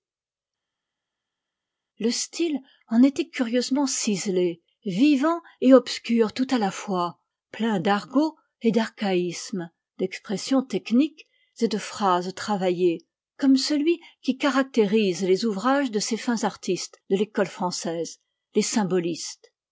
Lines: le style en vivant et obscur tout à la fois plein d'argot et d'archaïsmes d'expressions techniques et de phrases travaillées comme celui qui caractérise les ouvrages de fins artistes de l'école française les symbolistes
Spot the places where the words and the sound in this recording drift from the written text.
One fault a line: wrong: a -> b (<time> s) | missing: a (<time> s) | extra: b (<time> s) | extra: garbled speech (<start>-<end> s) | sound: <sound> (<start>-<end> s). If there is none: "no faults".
extra: était curieusement ciselé (3.0 s)
extra: ces (16.0 s)